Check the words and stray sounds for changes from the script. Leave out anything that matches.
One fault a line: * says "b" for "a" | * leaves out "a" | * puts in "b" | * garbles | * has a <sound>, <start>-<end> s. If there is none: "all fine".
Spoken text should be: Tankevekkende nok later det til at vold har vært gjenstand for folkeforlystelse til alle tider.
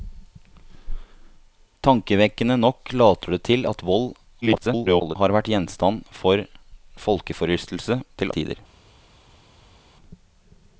* garbles
* leaves out "alle"